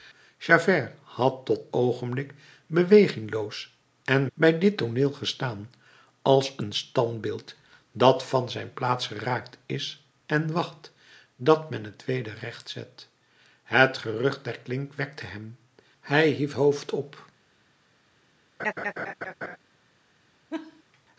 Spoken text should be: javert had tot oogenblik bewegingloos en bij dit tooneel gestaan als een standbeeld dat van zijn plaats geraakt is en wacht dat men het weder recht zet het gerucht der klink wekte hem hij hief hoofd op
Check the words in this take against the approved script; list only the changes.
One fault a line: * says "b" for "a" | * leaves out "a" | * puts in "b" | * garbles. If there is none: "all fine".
all fine